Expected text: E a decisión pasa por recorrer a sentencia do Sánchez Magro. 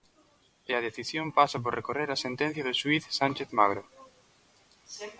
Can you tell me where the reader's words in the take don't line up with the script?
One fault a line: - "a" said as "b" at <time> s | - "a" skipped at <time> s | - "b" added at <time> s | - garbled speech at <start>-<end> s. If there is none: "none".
- "xuíz" added at 2.8 s